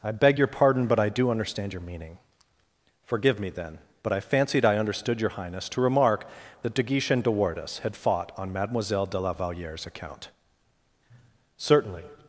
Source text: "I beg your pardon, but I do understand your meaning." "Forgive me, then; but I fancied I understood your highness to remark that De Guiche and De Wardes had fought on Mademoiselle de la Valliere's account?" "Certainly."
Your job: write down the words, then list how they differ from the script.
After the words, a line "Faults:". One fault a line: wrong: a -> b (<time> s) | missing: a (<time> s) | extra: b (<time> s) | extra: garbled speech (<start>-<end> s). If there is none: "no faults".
"I beg your pardon, but I do understand your meaning." "Forgive me, then; but I fancied I understood your highness to remark that De Guiche and De Wardes had fought on Mademoiselle de la Valliere's account?" "Certainly."
Faults:
no faults